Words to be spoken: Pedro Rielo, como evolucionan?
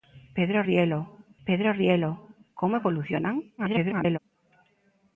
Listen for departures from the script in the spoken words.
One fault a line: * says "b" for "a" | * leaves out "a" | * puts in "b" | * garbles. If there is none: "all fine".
* puts in "pedro Rielo"
* garbles